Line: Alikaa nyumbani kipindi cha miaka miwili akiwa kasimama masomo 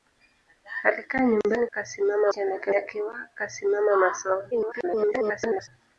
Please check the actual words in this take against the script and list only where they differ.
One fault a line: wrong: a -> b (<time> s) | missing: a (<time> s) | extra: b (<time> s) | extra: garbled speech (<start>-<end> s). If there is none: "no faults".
wrong: kipindi -> kasimama (1.7 s)
missing: miwili (2.7 s)
extra: garbled speech (4.5-5.7 s)